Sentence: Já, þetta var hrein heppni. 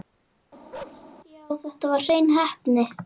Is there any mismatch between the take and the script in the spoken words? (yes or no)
no